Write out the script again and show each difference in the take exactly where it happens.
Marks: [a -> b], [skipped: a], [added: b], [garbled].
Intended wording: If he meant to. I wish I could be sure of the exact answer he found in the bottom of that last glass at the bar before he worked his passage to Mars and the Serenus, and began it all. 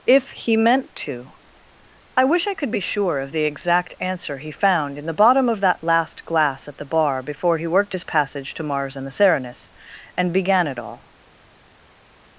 If he meant to. I wish I could be sure of the exact answer he found in the bottom of that last glass at the bar before he worked his passage to Mars and the Serenus, and began it all.